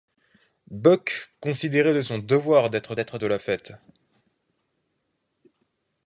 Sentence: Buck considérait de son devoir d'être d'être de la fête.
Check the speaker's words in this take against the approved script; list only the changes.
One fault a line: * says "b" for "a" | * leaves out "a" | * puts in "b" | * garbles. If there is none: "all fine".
all fine